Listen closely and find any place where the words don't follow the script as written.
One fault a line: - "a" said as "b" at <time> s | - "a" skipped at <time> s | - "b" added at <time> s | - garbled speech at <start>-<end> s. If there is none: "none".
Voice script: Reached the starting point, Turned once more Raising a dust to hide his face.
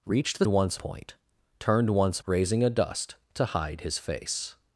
- "starting" said as "once" at 0.5 s
- "more" skipped at 2.2 s